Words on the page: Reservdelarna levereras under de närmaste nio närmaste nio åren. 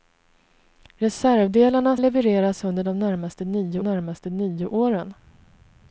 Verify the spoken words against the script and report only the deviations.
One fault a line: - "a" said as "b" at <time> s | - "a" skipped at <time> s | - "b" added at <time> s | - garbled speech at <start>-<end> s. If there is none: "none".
none